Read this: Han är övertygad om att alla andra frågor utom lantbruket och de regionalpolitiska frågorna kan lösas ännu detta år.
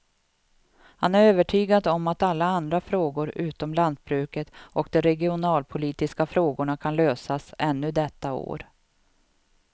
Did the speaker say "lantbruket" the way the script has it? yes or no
yes